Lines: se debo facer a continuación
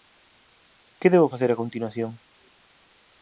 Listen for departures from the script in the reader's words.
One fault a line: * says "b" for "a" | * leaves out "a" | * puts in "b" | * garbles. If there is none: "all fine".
* says "que" for "se"